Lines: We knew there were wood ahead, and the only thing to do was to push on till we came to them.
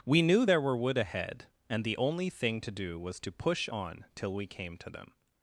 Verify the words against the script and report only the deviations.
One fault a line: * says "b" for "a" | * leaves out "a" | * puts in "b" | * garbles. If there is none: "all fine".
all fine